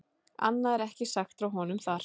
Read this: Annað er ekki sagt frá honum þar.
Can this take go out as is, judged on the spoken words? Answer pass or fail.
pass